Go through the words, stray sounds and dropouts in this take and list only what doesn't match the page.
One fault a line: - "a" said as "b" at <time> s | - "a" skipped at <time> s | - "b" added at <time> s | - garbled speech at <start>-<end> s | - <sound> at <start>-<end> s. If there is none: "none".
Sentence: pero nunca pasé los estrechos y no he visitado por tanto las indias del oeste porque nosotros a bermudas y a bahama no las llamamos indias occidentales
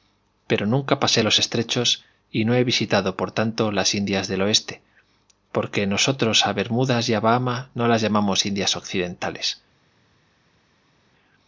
none